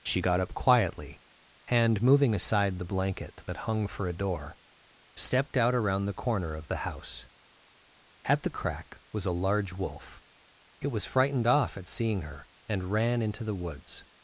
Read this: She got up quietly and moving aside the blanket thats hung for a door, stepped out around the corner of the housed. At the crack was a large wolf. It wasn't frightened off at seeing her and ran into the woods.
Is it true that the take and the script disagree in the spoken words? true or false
true